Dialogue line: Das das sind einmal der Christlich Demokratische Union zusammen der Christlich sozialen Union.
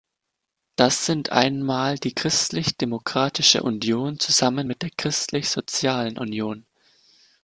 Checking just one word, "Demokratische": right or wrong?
right